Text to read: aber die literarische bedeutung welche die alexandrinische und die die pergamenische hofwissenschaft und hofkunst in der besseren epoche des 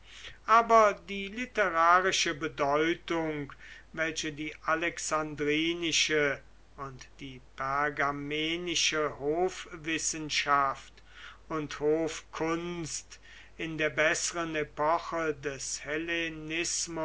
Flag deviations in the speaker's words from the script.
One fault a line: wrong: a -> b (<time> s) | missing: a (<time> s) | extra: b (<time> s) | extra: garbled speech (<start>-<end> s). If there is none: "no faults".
missing: die (7.4 s)